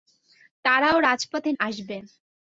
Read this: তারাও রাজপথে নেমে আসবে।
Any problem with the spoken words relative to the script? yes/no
yes